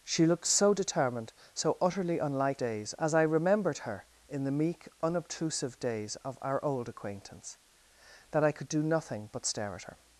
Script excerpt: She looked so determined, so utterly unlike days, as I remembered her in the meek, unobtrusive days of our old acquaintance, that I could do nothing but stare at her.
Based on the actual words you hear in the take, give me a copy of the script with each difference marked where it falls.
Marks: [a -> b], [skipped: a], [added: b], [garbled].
She looked so determined, so utterly unlike days, as I remembered her in the meek, unobtrusive days of our old acquaintance, that I could do nothing but stare at her.